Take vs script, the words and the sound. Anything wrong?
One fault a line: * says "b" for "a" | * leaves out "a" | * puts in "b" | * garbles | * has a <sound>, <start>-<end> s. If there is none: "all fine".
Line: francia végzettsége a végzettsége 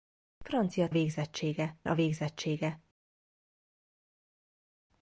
all fine